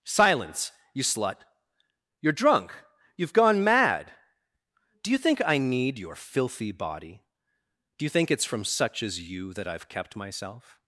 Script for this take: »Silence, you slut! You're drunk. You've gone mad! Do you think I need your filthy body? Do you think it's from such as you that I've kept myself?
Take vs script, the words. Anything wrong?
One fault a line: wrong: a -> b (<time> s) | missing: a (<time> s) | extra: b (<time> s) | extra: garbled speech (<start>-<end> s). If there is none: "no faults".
no faults